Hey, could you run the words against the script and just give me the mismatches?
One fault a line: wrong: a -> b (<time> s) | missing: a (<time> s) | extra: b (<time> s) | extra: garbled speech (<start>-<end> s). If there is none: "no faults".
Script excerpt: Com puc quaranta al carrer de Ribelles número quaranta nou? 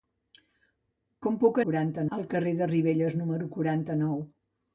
no faults